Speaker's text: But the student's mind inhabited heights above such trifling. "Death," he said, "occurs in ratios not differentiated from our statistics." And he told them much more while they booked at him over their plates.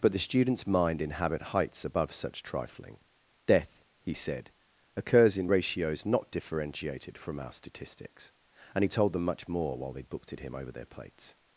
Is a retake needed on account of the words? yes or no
yes